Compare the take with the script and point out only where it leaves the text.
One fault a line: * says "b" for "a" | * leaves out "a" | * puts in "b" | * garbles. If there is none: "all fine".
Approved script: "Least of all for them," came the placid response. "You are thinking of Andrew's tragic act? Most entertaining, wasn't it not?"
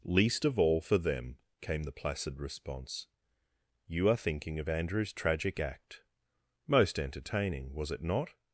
* says "was" for "wasn't"